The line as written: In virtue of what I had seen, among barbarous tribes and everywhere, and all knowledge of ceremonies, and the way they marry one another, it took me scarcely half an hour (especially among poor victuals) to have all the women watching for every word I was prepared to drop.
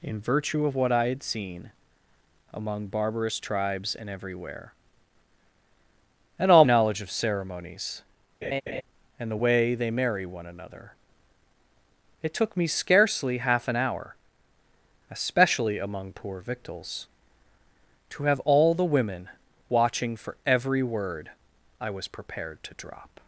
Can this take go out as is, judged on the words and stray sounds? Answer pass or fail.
fail